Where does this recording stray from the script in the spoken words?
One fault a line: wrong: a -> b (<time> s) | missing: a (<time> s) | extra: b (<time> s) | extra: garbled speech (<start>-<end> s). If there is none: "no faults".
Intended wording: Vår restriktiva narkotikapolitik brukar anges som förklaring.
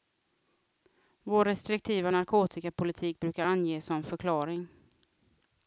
no faults